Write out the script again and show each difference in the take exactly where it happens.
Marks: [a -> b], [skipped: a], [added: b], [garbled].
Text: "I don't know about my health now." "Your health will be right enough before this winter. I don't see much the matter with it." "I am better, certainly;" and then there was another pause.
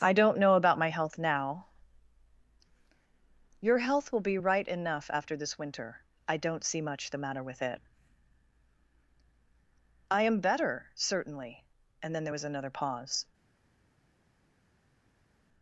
"I don't know about my health now." "Your health will be right enough [before -> after] this winter. I don't see much the matter with it." "I am better, certainly;" and then there was another pause.